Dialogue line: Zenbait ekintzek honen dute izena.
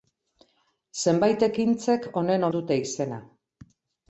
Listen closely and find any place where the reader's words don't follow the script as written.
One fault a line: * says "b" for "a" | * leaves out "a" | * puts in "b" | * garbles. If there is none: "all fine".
all fine